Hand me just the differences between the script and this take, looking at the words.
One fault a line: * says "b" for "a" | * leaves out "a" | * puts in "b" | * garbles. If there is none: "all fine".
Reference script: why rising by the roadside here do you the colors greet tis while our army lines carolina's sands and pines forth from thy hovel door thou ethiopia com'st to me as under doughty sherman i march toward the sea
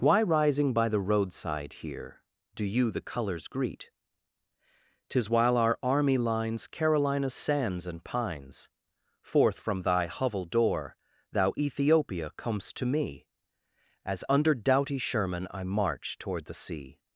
all fine